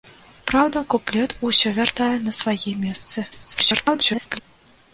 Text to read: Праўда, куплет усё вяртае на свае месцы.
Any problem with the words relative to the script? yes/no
yes